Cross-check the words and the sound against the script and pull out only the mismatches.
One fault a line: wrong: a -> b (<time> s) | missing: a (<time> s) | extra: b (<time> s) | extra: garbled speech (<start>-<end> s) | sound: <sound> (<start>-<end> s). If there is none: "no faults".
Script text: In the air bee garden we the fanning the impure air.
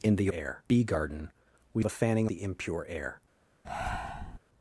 sound: breath (3.6-4.4 s)